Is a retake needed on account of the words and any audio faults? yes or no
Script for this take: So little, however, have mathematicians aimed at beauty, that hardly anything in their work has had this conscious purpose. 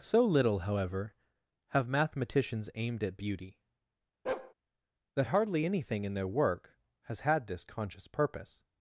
yes